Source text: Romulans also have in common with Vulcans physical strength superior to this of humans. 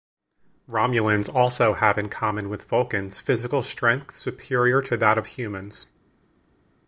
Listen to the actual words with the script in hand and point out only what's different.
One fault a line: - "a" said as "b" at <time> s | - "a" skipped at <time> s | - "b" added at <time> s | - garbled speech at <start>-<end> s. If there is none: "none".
- "this" said as "that" at 5.0 s